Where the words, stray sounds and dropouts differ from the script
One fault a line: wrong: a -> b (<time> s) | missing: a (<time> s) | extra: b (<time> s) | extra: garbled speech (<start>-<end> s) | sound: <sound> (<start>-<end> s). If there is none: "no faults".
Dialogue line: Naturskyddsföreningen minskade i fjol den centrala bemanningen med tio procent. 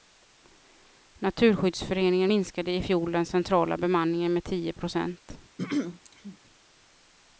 sound: throat clearing (5.6-6.4 s)